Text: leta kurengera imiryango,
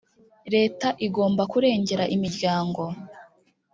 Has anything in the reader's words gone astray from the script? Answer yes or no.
yes